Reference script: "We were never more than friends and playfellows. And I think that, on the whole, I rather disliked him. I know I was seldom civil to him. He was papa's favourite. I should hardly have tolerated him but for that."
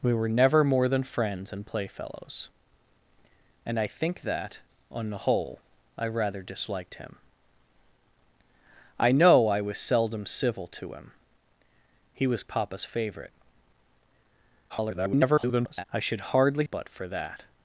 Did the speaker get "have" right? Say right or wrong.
wrong